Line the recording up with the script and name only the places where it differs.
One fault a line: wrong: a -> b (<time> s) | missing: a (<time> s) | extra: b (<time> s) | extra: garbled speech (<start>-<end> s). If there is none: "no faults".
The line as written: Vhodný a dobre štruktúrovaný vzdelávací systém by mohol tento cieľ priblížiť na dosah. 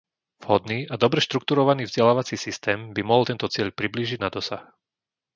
no faults